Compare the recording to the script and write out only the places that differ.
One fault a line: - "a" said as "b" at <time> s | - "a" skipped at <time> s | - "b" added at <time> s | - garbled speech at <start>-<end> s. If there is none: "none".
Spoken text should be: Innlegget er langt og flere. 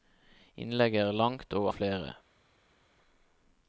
none